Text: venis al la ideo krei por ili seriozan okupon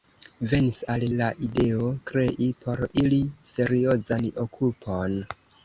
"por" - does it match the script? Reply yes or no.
yes